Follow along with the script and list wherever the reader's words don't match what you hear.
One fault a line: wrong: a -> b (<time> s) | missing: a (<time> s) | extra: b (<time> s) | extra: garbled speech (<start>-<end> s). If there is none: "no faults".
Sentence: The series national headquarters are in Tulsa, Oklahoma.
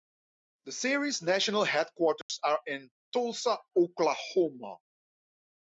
no faults